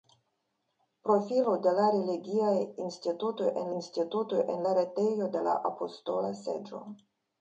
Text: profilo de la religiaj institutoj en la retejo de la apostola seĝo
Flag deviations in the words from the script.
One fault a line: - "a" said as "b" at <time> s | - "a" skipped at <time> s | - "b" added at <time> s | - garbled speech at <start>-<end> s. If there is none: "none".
- "institutoj en" added at 3.8 s